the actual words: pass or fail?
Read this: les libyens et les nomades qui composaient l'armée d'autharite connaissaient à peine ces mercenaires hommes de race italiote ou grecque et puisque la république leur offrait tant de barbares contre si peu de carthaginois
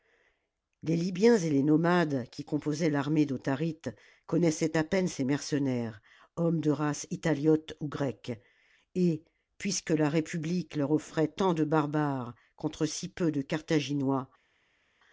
pass